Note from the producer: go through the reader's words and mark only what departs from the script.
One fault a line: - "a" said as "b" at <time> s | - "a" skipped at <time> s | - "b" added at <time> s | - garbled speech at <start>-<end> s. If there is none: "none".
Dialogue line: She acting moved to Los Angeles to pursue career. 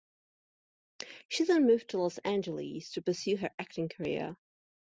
- "acting" said as "then" at 1.4 s
- "her acting" added at 3.4 s